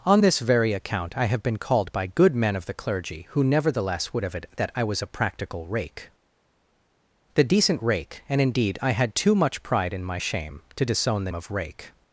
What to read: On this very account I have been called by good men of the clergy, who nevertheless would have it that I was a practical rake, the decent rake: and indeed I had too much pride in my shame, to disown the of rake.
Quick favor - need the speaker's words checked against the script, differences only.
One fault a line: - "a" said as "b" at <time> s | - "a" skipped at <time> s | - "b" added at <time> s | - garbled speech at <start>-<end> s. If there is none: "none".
none